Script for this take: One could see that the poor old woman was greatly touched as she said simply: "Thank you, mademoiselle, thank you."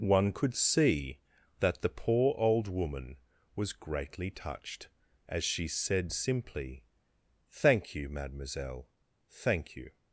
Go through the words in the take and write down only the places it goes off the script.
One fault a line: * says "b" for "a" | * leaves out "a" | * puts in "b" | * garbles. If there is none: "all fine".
all fine